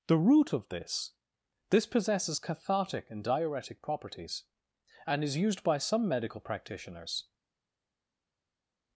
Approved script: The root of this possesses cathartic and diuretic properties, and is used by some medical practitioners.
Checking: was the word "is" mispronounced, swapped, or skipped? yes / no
no